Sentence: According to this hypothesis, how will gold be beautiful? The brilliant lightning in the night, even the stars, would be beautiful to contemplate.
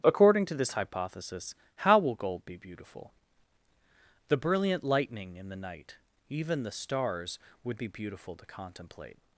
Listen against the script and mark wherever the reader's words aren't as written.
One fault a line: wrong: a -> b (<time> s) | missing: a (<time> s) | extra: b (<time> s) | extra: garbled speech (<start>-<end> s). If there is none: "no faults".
no faults